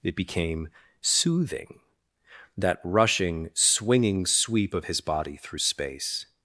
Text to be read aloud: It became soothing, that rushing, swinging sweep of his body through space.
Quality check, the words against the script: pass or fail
pass